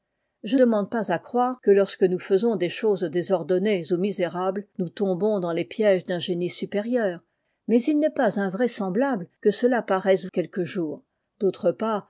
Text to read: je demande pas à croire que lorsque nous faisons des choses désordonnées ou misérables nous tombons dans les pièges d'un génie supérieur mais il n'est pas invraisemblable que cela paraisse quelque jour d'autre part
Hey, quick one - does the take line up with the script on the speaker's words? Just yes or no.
yes